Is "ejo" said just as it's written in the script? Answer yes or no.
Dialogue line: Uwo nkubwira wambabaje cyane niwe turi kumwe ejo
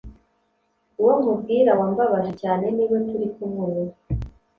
no